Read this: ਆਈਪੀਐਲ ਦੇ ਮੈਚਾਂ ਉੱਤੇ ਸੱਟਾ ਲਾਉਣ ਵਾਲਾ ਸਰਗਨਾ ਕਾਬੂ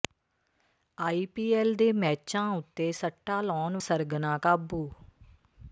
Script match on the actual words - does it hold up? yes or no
no